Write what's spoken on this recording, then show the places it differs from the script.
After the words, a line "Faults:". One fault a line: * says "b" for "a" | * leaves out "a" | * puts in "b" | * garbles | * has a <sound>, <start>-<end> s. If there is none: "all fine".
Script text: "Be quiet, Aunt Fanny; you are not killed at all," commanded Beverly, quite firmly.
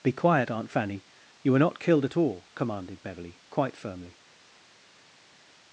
"Be quiet, Aunt Fanny; you were not killed at all," commanded Beverly, quite firmly.
Faults:
* says "were" for "are"